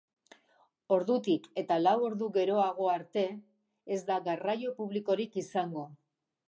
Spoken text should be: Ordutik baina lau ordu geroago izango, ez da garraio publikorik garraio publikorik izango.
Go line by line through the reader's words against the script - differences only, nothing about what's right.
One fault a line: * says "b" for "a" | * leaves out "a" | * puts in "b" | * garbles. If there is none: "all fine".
* says "eta" for "baina"
* says "arte" for "izango"
* leaves out "garraio publikorik"